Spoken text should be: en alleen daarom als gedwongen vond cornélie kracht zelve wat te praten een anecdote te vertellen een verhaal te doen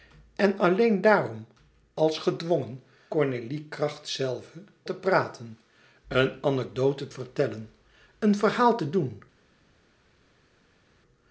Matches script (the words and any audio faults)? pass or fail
fail